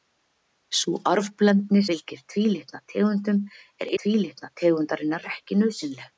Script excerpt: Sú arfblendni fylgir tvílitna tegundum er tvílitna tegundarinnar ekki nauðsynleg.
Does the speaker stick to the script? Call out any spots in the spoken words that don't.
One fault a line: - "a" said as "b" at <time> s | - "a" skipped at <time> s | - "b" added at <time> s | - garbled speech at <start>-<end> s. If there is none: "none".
none